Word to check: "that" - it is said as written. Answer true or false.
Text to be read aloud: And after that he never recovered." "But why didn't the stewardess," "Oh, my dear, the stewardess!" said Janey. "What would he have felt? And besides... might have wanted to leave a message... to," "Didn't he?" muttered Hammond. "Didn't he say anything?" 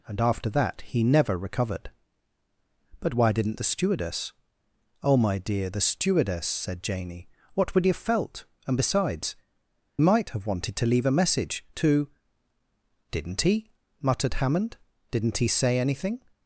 true